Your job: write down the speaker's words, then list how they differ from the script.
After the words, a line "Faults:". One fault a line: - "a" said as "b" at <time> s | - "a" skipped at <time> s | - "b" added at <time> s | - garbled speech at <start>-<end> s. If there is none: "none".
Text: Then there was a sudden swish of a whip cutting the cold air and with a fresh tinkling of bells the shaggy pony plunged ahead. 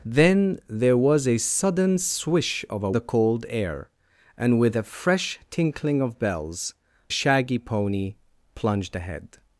Then there was a sudden swish of a the cold air and with a fresh tinkling of bells shaggy pony plunged ahead.
Faults:
- "whip cutting" skipped at 2.9 s
- "the" skipped at 6.7 s